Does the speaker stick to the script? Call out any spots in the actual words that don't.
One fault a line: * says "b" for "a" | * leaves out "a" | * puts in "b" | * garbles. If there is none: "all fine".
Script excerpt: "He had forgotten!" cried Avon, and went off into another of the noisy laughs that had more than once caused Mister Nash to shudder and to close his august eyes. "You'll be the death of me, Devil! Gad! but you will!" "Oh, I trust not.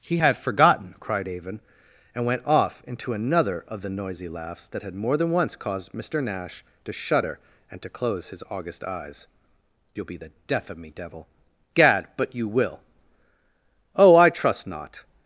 all fine